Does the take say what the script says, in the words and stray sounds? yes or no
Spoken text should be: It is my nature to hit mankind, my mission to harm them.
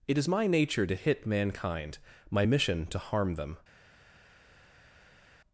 yes